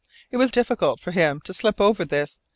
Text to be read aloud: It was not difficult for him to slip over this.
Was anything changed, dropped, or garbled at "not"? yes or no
yes